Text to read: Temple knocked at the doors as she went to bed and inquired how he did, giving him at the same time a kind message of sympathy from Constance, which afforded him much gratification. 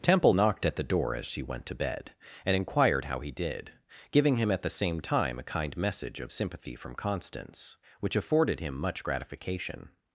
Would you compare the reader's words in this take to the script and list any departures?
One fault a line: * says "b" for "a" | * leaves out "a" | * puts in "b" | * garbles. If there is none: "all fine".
* says "door" for "doors"